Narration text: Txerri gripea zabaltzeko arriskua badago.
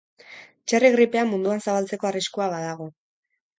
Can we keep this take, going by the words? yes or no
no